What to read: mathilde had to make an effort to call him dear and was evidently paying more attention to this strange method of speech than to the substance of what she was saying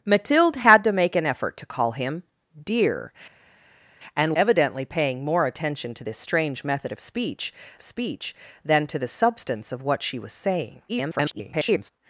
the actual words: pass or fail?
fail